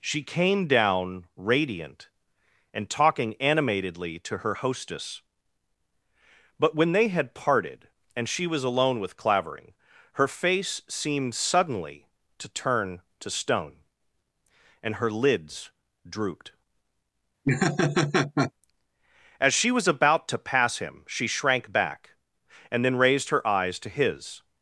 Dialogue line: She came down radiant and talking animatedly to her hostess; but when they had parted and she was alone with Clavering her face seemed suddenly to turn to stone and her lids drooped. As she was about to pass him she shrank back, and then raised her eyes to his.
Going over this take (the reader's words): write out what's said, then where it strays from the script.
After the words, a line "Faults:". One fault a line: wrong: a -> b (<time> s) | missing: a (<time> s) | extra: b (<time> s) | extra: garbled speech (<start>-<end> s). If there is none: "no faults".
She came down radiant and talking animatedly to her hostess; but when they had parted and she was alone with Clavering her face seemed suddenly to turn to stone and her lids drooped. As she was about to pass him she shrank back, and then raised her eyes to his.
Faults:
no faults